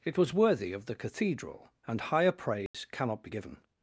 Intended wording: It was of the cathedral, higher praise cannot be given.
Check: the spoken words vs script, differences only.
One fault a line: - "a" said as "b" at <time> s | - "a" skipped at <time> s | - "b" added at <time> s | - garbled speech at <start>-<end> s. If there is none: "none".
- "worthy" added at 0.3 s
- "and" added at 1.9 s